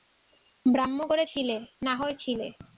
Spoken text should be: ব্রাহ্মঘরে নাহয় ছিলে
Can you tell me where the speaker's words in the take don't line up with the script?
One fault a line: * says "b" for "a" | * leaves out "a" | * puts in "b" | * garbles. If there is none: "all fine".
* puts in "ছিলে"